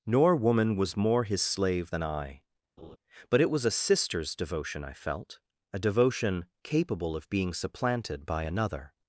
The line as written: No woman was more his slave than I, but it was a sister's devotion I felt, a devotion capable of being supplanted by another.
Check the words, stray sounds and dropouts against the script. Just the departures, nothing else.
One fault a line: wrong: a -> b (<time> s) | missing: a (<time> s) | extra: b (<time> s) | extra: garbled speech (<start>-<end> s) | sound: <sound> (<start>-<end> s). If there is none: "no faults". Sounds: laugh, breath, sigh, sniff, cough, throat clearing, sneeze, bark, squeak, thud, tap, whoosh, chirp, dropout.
wrong: No -> Nor (0.1 s)
sound: laugh (2.8-3.0 s)